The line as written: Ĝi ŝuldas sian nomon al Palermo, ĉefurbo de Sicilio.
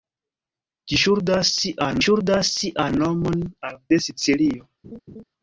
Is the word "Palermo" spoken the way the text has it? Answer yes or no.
no